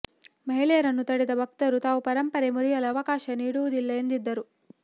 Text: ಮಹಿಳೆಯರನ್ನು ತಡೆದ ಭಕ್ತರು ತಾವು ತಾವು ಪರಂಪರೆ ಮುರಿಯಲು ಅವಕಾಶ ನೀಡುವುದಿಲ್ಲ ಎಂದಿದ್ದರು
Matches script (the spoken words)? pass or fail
fail